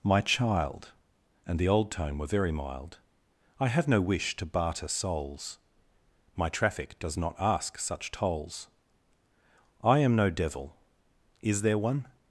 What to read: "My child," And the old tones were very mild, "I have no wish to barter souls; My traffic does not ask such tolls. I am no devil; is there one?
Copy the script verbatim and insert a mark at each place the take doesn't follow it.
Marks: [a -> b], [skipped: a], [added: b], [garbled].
"My child," And the old [tones -> tone] were very mild, "I have no wish to barter souls; My traffic does not ask such tolls. I am no devil; is there one?